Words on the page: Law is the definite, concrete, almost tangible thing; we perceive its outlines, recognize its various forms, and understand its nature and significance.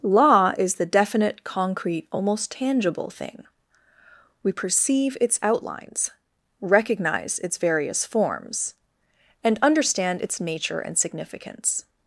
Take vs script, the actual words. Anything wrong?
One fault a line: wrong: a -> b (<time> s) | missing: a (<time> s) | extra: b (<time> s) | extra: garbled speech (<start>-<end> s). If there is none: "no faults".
no faults